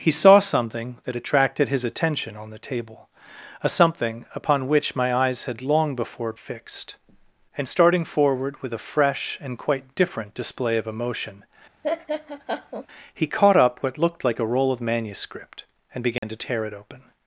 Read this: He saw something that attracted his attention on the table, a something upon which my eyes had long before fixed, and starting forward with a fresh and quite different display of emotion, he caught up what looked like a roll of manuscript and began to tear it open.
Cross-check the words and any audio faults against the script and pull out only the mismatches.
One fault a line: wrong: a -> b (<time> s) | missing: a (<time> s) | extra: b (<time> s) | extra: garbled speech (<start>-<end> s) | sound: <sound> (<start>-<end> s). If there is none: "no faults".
sound: laugh (11.8-12.9 s)
sound: dropout (16.2-16.2 s)